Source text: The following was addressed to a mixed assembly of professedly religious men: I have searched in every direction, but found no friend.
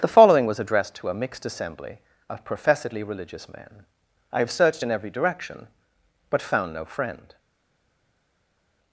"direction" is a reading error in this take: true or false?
false